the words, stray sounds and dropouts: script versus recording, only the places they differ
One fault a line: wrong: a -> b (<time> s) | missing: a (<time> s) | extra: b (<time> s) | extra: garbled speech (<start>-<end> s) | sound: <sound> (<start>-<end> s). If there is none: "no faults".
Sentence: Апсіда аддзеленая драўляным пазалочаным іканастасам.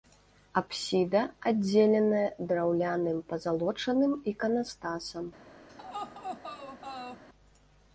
sound: laugh (5.7-7.2 s)